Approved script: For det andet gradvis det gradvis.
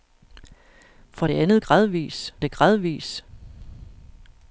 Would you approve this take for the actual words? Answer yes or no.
yes